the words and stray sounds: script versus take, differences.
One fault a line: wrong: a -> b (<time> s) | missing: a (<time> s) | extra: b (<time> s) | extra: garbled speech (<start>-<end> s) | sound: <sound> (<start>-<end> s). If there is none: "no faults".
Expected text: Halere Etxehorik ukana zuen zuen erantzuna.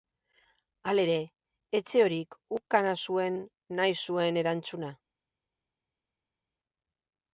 extra: nahi (3.8 s)